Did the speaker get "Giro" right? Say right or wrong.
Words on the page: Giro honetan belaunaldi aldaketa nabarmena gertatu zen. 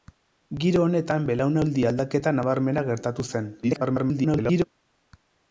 right